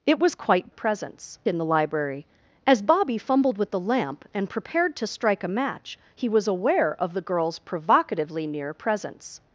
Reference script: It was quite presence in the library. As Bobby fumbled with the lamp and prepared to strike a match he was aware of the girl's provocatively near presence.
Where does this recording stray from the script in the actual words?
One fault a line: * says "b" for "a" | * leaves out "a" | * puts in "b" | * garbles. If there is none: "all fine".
all fine